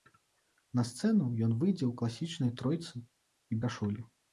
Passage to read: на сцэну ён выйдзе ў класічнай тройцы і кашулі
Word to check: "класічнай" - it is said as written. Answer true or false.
true